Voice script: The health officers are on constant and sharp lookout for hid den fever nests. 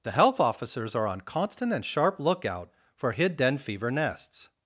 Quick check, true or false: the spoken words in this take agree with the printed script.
true